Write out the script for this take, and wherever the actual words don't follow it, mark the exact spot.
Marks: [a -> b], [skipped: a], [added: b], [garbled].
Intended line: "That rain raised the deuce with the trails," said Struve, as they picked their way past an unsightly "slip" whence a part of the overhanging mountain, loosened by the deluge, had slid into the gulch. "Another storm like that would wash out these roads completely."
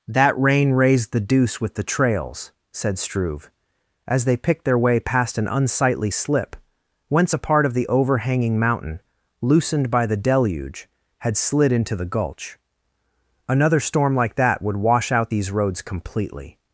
"That rain raised the deuce with the trails," said Struve, as they picked their way past an unsightly "slip" whence a part of the overhanging mountain, loosened by the deluge, had slid into the gulch. "Another storm like that would wash out these roads completely."